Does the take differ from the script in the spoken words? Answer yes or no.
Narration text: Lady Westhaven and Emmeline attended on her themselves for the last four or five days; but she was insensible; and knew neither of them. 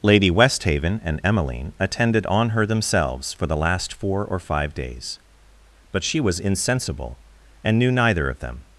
no